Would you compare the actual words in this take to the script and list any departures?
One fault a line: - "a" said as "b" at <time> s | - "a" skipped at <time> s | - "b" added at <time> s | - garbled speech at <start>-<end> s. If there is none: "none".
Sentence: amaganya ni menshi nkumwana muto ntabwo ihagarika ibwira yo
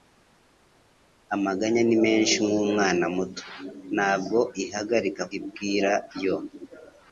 none